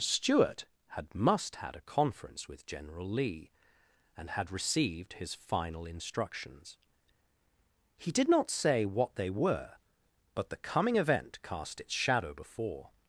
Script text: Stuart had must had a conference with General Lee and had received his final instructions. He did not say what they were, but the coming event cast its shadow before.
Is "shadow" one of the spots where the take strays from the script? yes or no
no